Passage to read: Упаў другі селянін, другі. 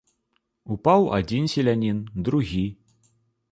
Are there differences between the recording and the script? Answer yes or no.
yes